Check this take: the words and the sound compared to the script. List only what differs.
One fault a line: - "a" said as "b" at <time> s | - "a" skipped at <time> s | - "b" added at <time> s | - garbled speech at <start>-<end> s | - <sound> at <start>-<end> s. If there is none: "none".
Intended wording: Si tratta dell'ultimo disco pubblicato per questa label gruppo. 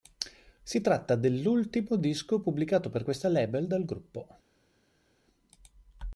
- "dal" added at 3.7 s